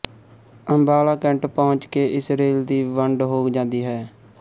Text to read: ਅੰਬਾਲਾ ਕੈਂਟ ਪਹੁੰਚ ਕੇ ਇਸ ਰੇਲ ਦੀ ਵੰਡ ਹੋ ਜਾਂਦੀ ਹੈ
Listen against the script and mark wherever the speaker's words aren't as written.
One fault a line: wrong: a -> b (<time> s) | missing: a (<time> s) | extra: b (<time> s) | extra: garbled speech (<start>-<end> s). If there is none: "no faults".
no faults